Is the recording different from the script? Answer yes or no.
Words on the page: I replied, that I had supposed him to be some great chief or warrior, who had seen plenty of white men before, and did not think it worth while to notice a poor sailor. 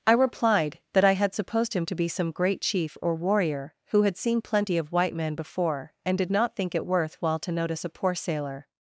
no